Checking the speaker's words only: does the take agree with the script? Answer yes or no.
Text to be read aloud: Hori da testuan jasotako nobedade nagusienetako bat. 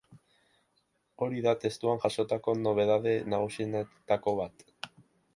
yes